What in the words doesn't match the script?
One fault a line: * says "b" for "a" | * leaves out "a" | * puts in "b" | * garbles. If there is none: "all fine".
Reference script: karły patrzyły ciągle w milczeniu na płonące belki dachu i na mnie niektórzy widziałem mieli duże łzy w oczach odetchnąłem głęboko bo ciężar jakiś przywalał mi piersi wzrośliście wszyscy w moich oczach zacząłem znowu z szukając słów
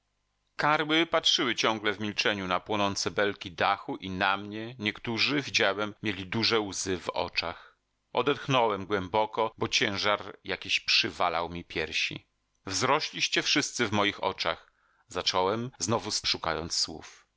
all fine